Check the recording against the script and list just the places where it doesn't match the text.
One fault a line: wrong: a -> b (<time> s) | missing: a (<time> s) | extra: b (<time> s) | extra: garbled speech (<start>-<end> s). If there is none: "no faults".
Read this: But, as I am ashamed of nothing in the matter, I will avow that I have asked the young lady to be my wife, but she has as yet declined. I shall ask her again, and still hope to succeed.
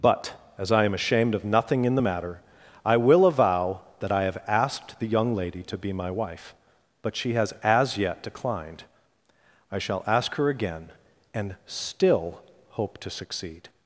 no faults